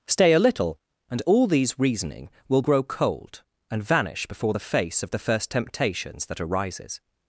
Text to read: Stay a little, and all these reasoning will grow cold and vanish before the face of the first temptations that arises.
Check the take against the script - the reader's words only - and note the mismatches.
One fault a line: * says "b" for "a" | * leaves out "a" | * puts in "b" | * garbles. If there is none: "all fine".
all fine